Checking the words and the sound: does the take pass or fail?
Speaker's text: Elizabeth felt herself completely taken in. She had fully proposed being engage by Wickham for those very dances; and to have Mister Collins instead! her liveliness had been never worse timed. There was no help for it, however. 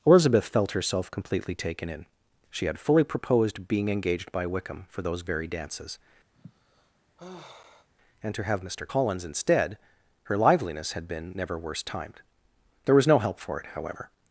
fail